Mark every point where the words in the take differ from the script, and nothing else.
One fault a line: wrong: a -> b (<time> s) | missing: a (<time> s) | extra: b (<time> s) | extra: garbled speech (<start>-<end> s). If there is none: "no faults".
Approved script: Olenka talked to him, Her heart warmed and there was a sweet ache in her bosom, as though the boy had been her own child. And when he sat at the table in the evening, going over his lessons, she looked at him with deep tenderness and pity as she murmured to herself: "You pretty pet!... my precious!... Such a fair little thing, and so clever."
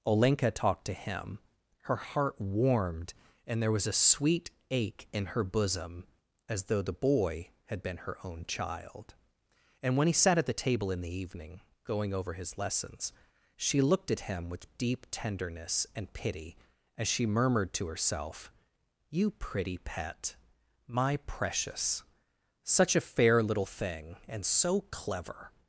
no faults